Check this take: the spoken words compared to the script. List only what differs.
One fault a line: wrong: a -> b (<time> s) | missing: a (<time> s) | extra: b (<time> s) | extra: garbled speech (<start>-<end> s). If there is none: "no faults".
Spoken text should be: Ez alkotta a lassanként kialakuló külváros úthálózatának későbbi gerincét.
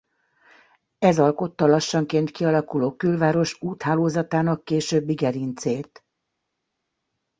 no faults